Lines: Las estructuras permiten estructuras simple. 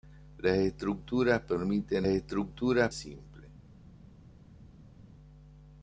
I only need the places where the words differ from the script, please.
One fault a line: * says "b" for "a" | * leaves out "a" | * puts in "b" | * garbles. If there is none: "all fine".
all fine